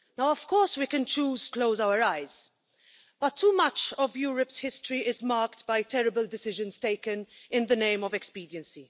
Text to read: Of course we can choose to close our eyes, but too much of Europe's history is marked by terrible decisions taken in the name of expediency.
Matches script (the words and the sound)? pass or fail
fail